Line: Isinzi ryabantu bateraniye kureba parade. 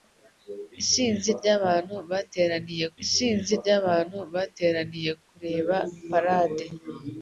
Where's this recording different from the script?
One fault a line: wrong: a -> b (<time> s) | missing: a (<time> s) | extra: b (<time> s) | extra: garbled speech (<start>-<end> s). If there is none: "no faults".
extra: isinzi ryabantu bateraniye (3.0 s)